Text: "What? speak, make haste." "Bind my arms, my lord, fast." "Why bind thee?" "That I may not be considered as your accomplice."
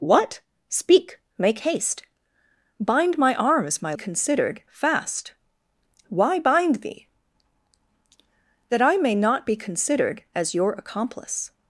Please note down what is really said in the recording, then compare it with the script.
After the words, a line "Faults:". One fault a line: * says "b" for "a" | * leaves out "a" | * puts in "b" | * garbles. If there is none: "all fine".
"What? speak, make haste." "Bind my arms, my considered, fast." "Why bind thee?" "That I may not be considered as your accomplice."
Faults:
* says "considered" for "lord"